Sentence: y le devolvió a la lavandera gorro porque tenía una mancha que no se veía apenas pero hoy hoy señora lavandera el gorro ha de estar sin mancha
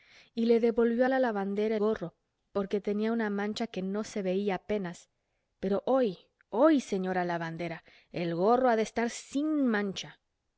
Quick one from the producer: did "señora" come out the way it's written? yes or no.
yes